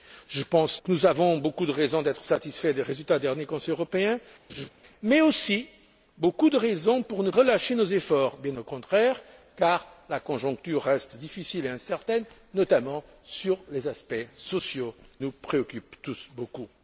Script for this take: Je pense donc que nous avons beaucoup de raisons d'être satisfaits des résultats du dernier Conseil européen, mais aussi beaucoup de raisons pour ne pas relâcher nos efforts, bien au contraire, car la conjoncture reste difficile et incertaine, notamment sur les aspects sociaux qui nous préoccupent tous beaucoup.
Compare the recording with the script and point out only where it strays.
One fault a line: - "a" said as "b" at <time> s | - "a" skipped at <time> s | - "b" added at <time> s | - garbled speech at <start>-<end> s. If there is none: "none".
- "donc" skipped at 0.8 s
- "pas" skipped at 7.3 s
- "qui" skipped at 14.9 s